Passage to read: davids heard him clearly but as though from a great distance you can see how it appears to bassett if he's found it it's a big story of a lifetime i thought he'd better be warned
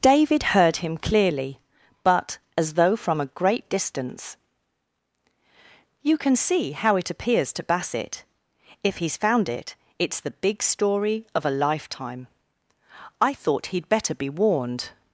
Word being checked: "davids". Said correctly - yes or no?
no